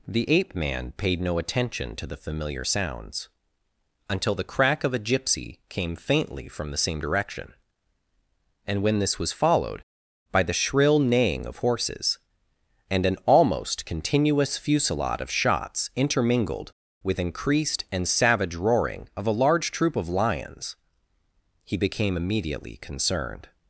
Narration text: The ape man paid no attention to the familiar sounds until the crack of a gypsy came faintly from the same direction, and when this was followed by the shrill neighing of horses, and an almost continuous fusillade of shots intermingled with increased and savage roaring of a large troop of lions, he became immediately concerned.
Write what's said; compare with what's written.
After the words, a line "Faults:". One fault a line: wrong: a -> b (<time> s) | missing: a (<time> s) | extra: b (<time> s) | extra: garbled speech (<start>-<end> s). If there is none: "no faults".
The ape man paid no attention to the familiar sounds until the crack of a gypsy came faintly from the same direction, and when this was followed by the shrill neighing of horses, and an almost continuous fusillade of shots intermingled with increased and savage roaring of a large troop of lions, he became immediately concerned.
Faults:
no faults